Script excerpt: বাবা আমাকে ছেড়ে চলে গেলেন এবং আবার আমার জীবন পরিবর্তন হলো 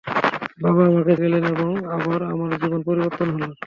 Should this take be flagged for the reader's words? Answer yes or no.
yes